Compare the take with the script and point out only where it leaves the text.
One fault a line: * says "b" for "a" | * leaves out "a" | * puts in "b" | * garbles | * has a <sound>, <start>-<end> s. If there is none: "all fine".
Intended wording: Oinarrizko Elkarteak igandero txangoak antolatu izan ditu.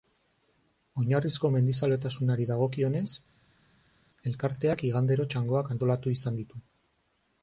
* puts in "mendizaletasunari dagokionez"